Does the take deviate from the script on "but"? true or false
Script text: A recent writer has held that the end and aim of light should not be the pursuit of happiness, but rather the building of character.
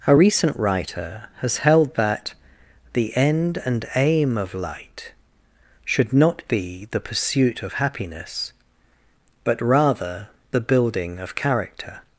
false